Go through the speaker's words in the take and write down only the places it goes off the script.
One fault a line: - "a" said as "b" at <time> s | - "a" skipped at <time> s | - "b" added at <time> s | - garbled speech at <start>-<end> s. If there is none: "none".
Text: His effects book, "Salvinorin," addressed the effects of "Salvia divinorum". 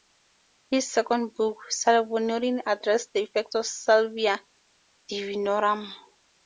- "effects" said as "second" at 0.9 s